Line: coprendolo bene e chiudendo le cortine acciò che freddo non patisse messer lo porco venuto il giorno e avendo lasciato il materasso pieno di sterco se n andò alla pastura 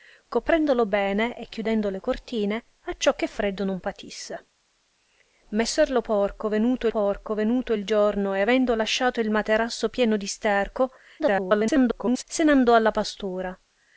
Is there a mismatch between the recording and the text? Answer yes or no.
yes